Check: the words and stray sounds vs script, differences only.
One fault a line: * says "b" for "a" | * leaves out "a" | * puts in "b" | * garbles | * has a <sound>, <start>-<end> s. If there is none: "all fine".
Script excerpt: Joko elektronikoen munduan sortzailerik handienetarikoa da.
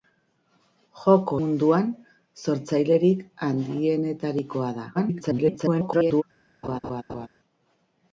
* leaves out "elektronikoen"
* garbles
* has a laugh, 6.6-7.3 s